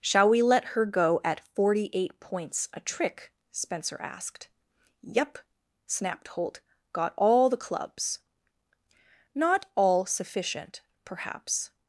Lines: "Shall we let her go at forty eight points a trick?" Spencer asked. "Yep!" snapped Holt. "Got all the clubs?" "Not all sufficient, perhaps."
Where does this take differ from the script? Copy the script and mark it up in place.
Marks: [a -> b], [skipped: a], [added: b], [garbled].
"Shall we let her go at forty eight points a trick?" Spencer asked. "Yep!" snapped Holt. "Got all the clubs?" "Not all sufficient, perhaps."